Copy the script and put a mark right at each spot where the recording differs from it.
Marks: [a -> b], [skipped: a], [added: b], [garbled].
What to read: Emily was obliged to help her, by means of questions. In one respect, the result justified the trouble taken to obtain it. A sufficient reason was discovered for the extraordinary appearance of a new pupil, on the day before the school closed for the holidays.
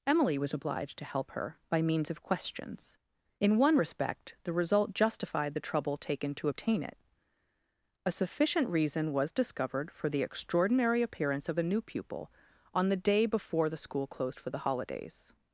Emily was obliged to help her, by means of questions. In one respect, the result justified the trouble taken to obtain it. A sufficient reason was discovered for the extraordinary appearance of a new pupil, on the day before the school closed for the holidays.